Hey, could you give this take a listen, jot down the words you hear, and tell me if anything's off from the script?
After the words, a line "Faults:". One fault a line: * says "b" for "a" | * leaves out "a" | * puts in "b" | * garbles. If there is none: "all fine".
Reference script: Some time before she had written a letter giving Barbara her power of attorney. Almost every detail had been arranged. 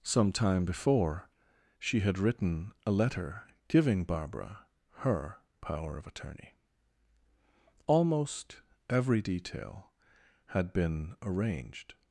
Some time before she had written a letter giving Barbara her power of attorney. Almost every detail had been arranged.
Faults:
all fine